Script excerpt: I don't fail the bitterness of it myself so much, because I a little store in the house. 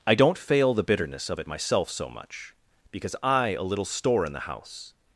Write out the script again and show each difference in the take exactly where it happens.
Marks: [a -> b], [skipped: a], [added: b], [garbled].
I don't fail the bitterness of it myself so much, because I a little store in the house.